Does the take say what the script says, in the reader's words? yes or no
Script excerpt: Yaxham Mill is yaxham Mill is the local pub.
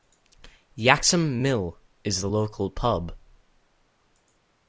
no